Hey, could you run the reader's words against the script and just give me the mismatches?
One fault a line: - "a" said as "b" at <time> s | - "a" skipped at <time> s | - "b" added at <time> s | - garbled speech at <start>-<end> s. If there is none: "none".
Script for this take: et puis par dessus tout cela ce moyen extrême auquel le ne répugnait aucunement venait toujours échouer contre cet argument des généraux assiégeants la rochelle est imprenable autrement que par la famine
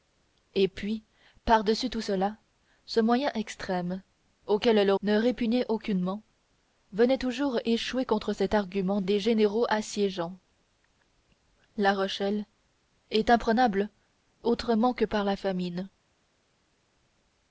none